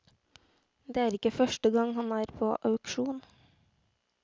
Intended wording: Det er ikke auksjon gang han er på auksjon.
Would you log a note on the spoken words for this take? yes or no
yes